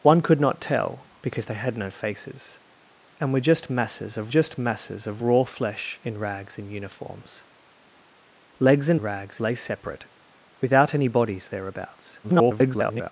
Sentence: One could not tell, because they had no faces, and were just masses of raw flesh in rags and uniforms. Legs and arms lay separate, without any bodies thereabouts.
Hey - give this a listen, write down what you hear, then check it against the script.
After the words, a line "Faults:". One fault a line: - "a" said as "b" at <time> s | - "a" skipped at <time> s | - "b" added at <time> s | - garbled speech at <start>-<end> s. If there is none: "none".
One could not tell, because they had no faces, and were just masses of just masses of raw flesh in rags and uniforms. Legs and rags lay separate, without any bodies thereabouts. [garbled]
Faults:
- "just masses of" added at 4.3 s
- "arms" said as "rags" at 9.0 s
- garbled speech at 12.2-13.1 s